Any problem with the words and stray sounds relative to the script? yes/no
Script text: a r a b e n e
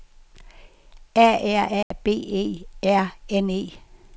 yes